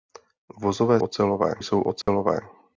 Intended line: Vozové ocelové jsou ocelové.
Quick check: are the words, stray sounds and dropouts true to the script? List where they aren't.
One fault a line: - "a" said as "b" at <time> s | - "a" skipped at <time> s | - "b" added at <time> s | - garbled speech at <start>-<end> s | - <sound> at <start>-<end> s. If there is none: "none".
- dropout at 2.0-2.1 s